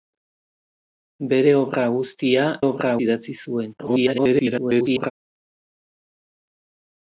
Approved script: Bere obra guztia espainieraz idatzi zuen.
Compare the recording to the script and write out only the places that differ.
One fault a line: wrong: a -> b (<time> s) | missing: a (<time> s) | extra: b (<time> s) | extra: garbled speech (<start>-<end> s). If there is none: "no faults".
wrong: espainieraz -> obra (2.6 s)
extra: garbled speech (3.8-5.1 s)